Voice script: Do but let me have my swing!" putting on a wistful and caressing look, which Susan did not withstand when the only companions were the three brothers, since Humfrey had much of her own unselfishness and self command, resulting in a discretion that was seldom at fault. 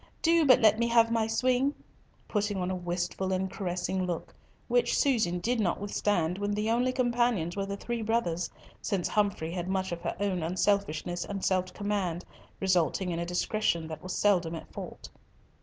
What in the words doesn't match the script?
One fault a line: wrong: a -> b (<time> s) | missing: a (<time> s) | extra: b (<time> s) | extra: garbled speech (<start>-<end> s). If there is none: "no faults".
no faults